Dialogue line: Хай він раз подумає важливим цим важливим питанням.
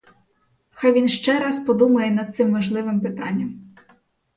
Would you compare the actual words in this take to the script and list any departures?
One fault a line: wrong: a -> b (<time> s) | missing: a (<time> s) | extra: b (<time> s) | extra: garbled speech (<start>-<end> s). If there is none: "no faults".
extra: ще (1.1 s)
wrong: важливим -> над (2.1 s)